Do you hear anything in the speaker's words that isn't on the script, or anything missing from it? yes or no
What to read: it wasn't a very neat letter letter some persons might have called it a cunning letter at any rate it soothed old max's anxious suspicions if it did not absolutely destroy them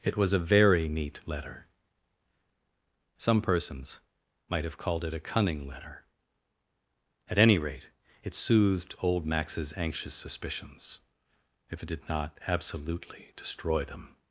yes